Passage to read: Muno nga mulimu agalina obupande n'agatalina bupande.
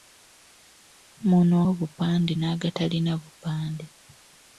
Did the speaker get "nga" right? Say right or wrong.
wrong